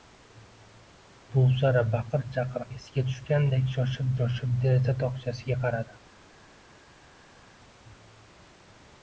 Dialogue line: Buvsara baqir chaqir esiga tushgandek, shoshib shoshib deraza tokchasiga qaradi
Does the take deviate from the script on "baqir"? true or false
false